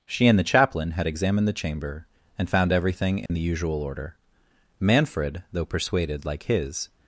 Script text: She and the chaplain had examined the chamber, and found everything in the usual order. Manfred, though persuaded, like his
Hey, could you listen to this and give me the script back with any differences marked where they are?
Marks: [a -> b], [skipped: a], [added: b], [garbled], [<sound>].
She and the chaplain had examined the chamber, and found everything in [dropout] the usual order. Manfred, though persuaded, like his